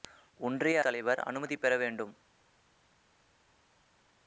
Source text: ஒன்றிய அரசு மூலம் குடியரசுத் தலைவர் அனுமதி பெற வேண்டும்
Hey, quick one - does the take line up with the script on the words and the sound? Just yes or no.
no